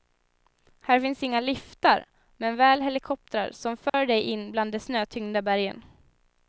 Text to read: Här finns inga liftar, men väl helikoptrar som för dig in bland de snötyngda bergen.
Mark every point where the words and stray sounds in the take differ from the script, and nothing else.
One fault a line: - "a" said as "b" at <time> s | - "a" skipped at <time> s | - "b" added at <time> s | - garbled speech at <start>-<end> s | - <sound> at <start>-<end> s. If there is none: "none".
- dropout at 3.9-3.9 s